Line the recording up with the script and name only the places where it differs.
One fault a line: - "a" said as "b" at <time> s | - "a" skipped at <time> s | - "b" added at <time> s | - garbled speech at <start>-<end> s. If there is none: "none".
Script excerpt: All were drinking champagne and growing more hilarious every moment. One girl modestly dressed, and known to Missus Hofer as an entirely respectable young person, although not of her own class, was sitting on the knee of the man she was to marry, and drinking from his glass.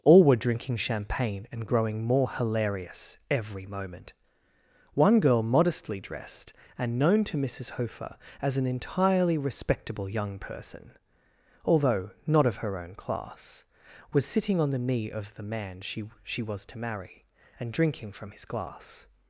- "she" added at 16.2 s